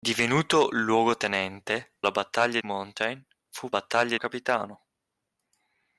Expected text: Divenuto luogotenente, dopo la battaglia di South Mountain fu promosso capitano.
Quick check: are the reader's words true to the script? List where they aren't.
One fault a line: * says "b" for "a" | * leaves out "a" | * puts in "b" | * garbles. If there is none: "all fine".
* leaves out "dopo"
* leaves out "di South"
* says "battaglia" for "promosso"